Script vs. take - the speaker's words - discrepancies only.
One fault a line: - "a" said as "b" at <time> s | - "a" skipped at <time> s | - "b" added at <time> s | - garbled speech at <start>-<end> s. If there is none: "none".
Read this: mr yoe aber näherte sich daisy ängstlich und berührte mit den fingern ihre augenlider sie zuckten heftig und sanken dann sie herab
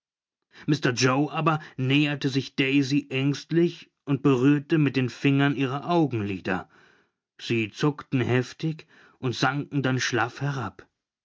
- "sie" said as "schlaff" at 10.0 s